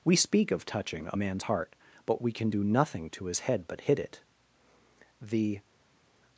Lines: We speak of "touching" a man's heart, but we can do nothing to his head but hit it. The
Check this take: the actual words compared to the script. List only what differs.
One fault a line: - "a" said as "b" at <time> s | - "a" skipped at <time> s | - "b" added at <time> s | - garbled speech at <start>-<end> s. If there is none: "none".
none